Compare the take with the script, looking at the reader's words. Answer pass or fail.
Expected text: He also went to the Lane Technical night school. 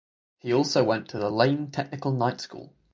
pass